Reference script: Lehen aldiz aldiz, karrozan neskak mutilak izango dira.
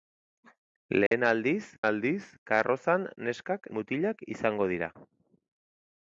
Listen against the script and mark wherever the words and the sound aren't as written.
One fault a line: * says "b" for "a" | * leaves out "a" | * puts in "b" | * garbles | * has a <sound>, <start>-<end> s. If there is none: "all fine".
* has a dropout, 1.1-1.1 s